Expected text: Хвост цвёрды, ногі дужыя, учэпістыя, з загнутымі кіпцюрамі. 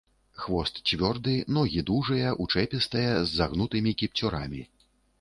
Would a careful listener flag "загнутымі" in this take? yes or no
no